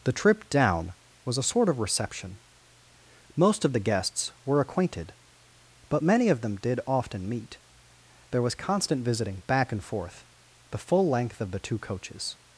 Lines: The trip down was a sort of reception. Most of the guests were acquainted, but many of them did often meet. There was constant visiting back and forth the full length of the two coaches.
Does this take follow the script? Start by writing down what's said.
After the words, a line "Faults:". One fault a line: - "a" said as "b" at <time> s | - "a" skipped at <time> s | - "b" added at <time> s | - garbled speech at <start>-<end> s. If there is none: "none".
The trip down was a sort of reception. Most of the guests were acquainted, but many of them did often meet. There was constant visiting back and forth the full length of the two coaches.
Faults:
none